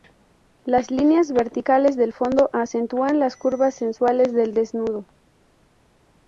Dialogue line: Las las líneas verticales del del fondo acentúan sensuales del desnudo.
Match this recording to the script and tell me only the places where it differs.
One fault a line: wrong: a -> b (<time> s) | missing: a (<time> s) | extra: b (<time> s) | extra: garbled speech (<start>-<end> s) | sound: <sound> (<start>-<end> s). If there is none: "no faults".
missing: las (0.9 s)
missing: del (2.1 s)
extra: las curvas (3.2 s)